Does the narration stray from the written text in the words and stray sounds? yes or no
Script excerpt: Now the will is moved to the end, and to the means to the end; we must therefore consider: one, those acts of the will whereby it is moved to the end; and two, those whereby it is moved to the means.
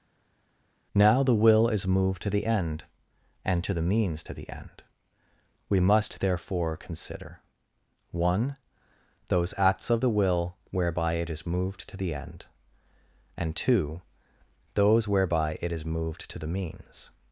no